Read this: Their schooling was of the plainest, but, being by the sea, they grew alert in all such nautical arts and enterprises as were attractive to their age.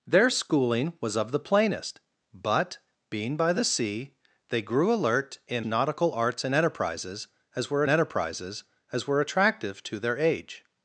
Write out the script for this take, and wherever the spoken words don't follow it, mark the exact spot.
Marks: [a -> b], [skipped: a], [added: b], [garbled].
Their schooling was of the plainest, but, being by the sea, they grew alert in [skipped: all such] nautical arts and enterprises as were [added: enterprises as were] attractive to their age.